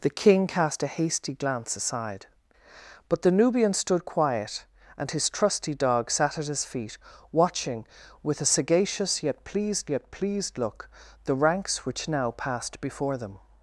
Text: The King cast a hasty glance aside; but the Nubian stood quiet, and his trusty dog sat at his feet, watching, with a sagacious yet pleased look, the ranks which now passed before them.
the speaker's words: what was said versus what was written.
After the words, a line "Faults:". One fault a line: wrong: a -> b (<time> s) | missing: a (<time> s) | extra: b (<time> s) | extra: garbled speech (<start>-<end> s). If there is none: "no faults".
The King cast a hasty glance aside; but the Nubian stood quiet, and his trusty dog sat at his feet, watching, with a sagacious yet pleased yet pleased look, the ranks which now passed before them.
Faults:
extra: yet pleased (9.9 s)